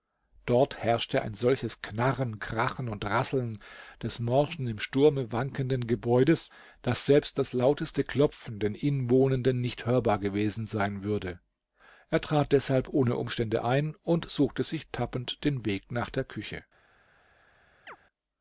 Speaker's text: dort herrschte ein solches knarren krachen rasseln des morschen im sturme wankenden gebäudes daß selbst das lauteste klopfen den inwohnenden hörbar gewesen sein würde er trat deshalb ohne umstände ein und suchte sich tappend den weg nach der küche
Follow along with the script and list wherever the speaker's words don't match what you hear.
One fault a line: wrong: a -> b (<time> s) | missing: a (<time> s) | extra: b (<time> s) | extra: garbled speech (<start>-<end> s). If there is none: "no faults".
extra: und (2.9 s)
extra: nicht (9.6 s)